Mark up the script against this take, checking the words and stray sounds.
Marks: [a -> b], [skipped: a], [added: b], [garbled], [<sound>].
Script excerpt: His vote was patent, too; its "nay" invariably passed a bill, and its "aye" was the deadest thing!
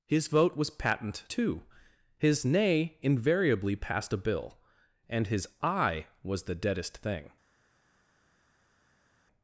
His vote was patent, too; [its -> his] "nay" invariably passed a bill, and [its -> his] "aye" was the deadest thing!